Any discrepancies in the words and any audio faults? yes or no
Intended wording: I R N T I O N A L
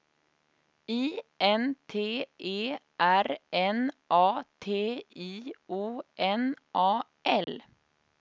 yes